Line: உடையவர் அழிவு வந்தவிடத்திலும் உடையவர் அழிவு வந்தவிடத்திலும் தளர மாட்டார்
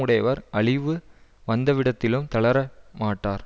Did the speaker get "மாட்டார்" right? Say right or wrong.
right